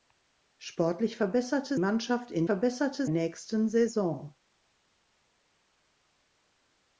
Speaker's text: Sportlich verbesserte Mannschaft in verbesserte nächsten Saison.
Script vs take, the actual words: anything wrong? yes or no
no